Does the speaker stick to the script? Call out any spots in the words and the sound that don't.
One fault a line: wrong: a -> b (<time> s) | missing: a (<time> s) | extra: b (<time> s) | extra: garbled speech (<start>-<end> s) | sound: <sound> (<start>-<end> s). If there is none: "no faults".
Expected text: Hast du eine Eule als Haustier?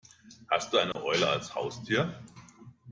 sound: dropout (0.9-1.0 s)